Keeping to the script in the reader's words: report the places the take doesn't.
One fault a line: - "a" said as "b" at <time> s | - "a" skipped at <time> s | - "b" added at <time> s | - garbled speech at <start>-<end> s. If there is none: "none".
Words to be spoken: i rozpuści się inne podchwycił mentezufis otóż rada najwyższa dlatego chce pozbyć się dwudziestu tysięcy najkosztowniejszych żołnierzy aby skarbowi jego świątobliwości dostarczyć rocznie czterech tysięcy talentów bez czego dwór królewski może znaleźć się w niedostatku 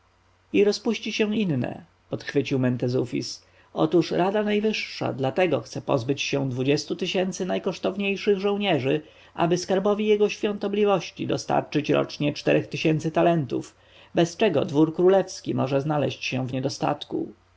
none